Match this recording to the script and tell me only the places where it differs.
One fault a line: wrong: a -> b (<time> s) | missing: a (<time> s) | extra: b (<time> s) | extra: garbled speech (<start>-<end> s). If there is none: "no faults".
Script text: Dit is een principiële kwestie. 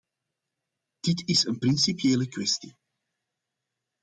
no faults